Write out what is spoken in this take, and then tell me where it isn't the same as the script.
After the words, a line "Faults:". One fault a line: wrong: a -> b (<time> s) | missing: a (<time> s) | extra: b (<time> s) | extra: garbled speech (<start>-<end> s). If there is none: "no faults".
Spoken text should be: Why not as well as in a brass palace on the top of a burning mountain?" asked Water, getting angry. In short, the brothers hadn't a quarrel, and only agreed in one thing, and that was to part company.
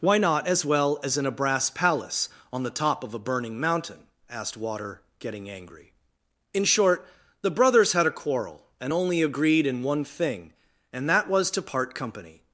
Why not as well as in a brass palace on the top of a burning mountain?" asked Water, getting angry. In short, the brothers had a quarrel, and only agreed in one thing, and that was to part company.
Faults:
wrong: hadn't -> had (7.9 s)